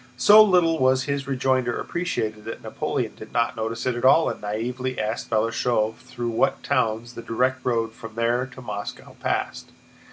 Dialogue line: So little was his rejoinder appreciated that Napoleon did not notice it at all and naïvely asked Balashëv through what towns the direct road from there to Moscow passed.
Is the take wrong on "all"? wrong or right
right